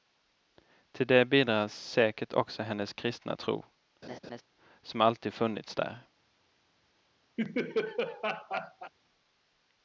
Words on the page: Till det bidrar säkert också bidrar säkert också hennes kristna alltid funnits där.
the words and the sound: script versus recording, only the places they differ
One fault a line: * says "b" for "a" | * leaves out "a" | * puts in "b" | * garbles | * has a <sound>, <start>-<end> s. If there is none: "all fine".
* says "hennes kristna tro som" for "bidrar säkert också hennes kristna"
* has a laugh, 4.0-4.4 s
* has a laugh, 7.4-8.9 s